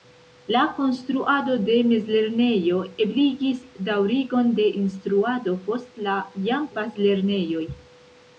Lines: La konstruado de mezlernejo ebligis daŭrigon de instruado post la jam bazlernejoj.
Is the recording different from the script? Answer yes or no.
no